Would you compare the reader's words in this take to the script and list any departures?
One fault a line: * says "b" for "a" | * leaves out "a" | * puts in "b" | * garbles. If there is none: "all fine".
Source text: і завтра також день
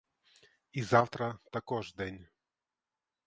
all fine